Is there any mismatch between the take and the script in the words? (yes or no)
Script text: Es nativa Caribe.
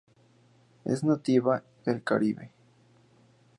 yes